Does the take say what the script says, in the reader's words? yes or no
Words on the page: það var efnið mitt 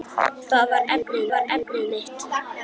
no